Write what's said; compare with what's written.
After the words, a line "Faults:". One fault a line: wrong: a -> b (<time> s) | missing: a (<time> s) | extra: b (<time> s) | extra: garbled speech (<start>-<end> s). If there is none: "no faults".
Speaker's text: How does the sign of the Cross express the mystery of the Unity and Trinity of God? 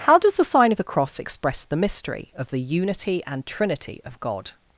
How does the sign of the Cross express the mystery of the Unity and Trinity of God?
Faults:
no faults